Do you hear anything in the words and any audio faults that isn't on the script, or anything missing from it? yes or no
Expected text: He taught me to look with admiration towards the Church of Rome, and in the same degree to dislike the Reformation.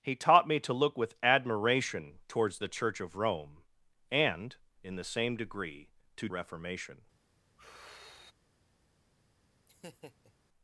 yes